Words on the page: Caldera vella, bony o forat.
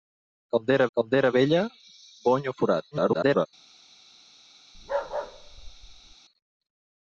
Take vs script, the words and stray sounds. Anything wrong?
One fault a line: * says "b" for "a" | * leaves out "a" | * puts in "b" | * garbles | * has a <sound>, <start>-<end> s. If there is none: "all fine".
* puts in "caldera"
* garbles
* has a bark, 4.7-6.2 s